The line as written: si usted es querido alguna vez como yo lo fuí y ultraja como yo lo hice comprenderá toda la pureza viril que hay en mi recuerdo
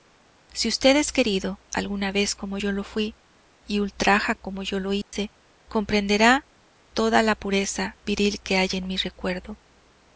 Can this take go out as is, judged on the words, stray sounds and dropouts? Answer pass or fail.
fail